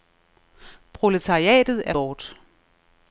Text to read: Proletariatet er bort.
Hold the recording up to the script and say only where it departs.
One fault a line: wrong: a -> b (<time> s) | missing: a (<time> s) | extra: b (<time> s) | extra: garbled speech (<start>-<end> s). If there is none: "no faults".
no faults